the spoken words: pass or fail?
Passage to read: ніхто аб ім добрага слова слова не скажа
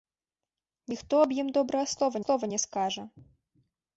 pass